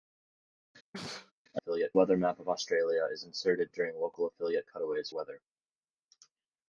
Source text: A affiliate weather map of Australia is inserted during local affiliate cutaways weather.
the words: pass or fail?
pass